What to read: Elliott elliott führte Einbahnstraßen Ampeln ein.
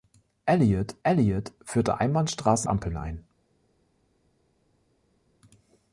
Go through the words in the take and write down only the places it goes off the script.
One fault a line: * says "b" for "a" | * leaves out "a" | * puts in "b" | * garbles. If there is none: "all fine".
all fine